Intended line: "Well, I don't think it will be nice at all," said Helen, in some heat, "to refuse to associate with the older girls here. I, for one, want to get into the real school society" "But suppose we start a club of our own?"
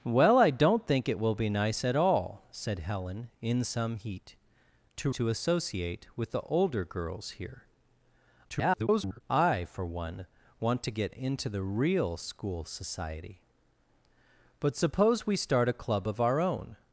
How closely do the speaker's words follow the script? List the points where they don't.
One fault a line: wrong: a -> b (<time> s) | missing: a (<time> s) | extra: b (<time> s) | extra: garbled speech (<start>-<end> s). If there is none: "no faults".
missing: refuse (5.1 s)
extra: garbled speech (8.5-9.2 s)